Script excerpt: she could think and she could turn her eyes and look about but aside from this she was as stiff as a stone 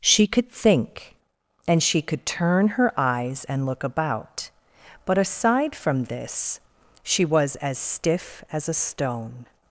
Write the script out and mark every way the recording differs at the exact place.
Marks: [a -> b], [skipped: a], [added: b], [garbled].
she could think and she could turn her eyes and look about but aside from this she was as stiff as a stone